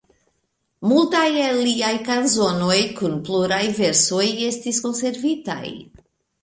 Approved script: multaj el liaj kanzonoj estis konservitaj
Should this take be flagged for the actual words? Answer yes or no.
yes